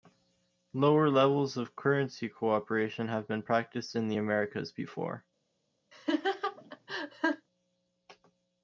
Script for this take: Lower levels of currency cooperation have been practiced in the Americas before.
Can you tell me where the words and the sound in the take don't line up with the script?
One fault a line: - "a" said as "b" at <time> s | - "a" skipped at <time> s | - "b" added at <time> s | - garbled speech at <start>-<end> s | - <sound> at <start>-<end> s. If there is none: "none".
- laugh at 5.9-7.5 s